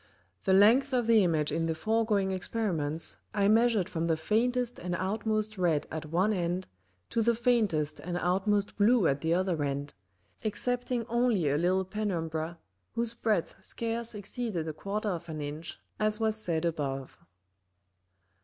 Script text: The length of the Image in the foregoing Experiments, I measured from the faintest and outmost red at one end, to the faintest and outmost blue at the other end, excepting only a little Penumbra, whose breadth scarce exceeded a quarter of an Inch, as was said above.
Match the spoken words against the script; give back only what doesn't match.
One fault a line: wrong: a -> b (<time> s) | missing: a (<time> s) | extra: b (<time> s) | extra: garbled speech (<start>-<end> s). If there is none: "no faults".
no faults